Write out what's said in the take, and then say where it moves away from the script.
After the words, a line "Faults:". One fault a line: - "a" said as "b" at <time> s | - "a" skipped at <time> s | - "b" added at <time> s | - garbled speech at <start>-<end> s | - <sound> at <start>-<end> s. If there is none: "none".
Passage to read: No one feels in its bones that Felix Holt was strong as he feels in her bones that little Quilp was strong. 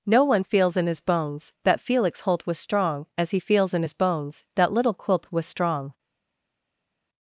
No one feels in his bones that Felix Holt was strong as he feels in his bones that little Quilp was strong.
Faults:
- "its" said as "his" at 0.9 s
- "her" said as "his" at 3.8 s